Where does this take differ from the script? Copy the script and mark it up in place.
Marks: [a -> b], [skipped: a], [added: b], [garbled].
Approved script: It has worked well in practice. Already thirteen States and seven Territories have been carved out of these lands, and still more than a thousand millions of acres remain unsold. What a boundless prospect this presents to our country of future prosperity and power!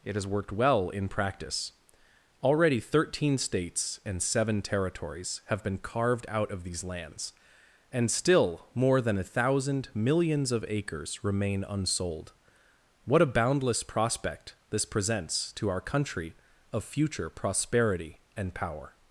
It has worked well in practice. Already thirteen States and seven Territories have been carved out of these lands, and still more than a thousand millions of acres remain unsold. What a boundless prospect this presents to our country of future prosperity and power!